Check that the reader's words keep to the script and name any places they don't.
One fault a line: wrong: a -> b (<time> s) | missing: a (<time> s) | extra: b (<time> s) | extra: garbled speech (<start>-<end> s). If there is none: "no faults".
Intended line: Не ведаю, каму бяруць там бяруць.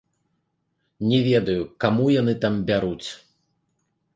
wrong: бяруць -> яны (2.2 s)